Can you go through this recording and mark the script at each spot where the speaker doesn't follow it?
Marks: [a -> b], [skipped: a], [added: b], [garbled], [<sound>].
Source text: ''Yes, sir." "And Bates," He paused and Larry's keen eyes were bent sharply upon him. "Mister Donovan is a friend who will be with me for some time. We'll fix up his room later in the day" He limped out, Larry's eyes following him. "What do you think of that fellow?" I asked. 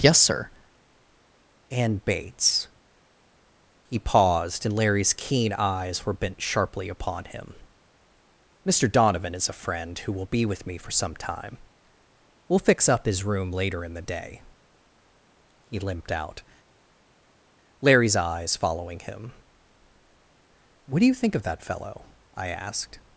''Yes, sir." "And Bates," He paused and Larry's keen eyes were bent sharply upon him. "Mister Donovan is a friend who will be with me for some time. We'll fix up his room later in the day" He limped out, Larry's eyes following him. "What do you think of that fellow?" I asked.